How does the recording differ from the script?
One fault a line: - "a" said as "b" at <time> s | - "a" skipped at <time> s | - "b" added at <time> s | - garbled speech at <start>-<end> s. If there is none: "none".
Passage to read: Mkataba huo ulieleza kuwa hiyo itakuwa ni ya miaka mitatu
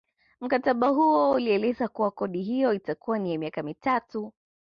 - "kodi" added at 2.1 s